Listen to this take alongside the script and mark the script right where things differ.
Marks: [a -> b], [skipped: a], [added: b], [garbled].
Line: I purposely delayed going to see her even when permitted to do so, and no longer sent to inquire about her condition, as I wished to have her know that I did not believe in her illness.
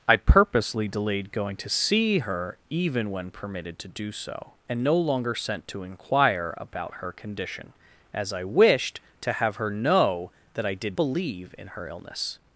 I purposely delayed going to see her even when permitted to do so, and no longer sent to inquire about her condition, as I wished to have her know that I did [skipped: not] believe in her illness.